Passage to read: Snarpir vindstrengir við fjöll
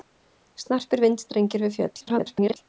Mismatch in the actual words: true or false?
true